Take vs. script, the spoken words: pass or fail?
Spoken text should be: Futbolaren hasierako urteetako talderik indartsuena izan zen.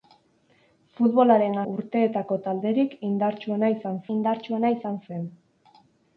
fail